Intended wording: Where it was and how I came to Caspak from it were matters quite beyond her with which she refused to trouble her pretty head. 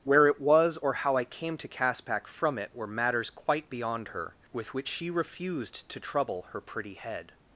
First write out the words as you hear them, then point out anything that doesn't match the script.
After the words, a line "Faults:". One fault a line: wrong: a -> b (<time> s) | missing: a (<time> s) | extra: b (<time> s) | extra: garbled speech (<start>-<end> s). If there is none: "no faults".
Where it was or how I came to Caspak from it were matters quite beyond her with which she refused to trouble her pretty head.
Faults:
wrong: and -> or (0.8 s)